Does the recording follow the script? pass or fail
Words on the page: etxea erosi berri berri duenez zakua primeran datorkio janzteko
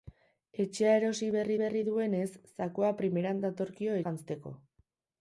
pass